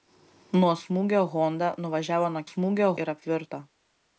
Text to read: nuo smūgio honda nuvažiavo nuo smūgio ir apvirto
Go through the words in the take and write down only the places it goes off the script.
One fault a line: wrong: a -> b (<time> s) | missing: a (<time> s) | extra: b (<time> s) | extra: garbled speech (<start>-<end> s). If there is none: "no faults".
no faults